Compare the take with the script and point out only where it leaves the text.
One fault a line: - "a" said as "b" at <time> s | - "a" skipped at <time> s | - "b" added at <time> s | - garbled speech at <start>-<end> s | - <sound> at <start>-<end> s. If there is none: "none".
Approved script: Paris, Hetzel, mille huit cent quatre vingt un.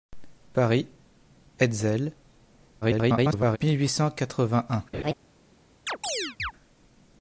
- garbled speech at 2.8-3.6 s
- laugh at 4.9-5.1 s
- chirp at 5.9-6.5 s